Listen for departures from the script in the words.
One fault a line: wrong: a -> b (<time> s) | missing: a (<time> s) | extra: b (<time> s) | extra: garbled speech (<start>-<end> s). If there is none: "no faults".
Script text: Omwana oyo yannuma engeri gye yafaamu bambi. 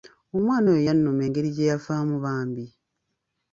no faults